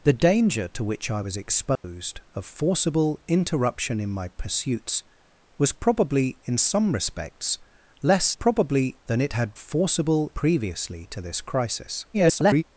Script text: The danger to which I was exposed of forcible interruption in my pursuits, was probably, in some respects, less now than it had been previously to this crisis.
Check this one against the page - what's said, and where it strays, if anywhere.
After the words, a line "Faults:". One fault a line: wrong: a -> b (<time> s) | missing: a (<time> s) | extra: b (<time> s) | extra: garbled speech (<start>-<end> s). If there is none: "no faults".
The danger to which I was exposed of forcible interruption in my pursuits, was probably, in some respects, less probably than it had forcible previously to this crisis. [garbled]
Faults:
wrong: now -> probably (8.3 s)
wrong: been -> forcible (9.6 s)
extra: garbled speech (12.1-12.6 s)